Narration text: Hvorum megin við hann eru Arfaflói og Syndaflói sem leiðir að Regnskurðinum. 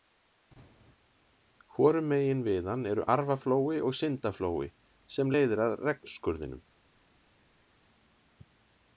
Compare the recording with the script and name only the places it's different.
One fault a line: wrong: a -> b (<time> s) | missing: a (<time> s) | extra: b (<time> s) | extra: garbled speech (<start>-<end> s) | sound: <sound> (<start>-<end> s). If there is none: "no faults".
no faults